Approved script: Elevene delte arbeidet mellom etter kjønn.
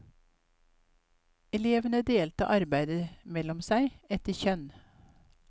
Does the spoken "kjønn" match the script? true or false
true